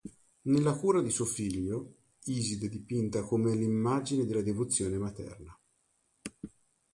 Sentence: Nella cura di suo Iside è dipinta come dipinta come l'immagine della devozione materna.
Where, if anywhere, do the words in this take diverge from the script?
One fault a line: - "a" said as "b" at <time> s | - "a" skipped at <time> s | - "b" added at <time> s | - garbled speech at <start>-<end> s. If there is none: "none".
- "figlio" added at 1.2 s
- "dipinta come" skipped at 3.5 s